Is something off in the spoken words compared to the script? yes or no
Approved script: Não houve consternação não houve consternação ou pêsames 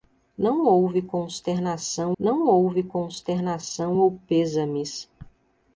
no